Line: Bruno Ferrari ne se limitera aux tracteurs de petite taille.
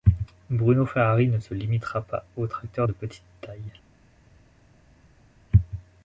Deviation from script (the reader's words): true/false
true